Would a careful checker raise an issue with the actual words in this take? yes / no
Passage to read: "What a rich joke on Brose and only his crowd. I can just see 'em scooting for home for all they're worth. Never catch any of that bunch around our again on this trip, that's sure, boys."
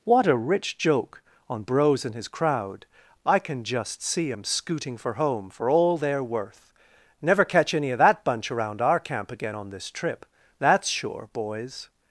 yes